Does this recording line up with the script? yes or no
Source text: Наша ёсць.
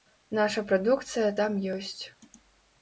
no